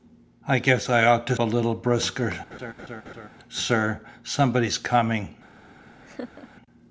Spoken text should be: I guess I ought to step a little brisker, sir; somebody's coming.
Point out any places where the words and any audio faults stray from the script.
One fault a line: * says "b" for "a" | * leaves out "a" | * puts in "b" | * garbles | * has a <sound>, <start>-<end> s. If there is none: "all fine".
* leaves out "step"
* has a laugh, 2.5-3.3 s
* has a laugh, 6.0-6.5 s